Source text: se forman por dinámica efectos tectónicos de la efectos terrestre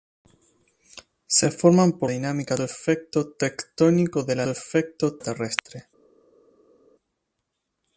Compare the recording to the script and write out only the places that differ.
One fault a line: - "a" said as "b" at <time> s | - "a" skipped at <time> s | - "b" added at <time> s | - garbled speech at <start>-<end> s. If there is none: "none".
none